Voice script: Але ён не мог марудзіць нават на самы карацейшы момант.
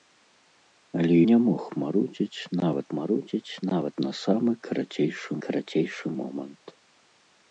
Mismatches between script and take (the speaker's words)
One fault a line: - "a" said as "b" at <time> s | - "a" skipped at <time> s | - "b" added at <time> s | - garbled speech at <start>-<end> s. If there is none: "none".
- "ён" skipped at 1.2 s
- "марудзіць нават" added at 3.0 s
- "карацейшы" added at 5.5 s